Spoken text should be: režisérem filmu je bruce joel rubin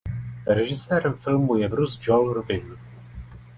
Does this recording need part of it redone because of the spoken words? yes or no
no